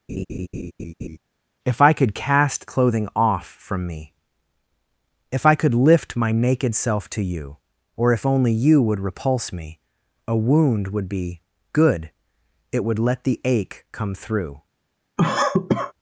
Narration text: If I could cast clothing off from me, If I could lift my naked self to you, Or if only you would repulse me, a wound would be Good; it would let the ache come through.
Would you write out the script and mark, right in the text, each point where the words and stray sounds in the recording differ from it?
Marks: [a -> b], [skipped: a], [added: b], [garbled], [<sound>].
[laugh] If I could cast clothing off from me, If I could lift my naked self to you, Or if only you would repulse me, a wound would be Good; it would let the ache come through. [cough]